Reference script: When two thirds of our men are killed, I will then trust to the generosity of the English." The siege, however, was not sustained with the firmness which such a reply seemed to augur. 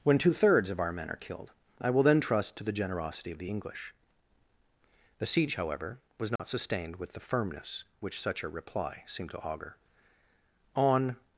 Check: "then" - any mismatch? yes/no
no